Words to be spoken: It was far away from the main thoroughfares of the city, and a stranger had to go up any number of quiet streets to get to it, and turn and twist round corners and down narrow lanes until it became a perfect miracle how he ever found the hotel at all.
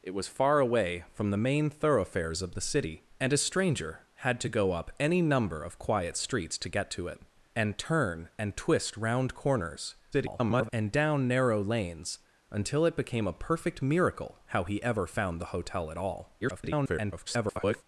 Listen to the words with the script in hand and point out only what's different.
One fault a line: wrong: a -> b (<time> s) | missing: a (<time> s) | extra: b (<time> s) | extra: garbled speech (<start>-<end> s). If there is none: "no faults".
extra: garbled speech (10.1-10.7 s)
extra: garbled speech (16.4-17.8 s)